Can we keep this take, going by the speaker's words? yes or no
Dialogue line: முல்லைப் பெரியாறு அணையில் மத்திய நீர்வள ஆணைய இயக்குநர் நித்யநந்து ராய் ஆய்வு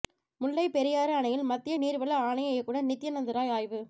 yes